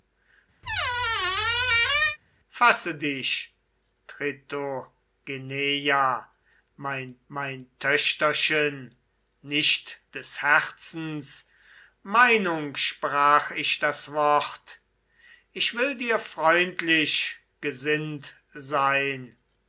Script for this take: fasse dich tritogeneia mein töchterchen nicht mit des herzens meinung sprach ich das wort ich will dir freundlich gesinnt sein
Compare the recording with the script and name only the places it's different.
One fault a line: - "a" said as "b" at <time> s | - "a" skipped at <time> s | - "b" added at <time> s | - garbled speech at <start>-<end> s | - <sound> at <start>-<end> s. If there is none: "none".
- squeak at 0.6-2.2 s
- "mein" added at 7.3 s
- "mit" skipped at 10.0 s